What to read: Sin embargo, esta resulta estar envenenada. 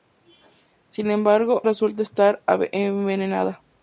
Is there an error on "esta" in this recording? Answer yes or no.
yes